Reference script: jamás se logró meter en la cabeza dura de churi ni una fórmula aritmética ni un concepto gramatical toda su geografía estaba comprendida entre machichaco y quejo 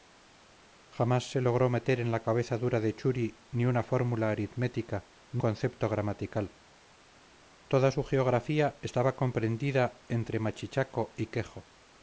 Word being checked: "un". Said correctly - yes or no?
no